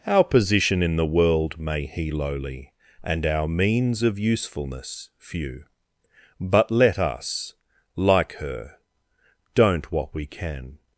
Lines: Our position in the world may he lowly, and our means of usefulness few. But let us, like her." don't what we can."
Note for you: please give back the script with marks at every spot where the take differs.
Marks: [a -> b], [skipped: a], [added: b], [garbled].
Our position in the world may he lowly, and our means of usefulness few. But let us, like her." don't what we can."